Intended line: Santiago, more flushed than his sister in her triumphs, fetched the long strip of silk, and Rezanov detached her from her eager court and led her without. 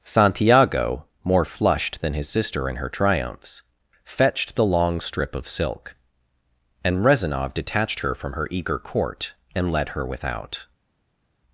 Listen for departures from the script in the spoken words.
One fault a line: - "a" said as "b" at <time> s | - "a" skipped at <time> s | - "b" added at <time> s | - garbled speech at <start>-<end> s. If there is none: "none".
none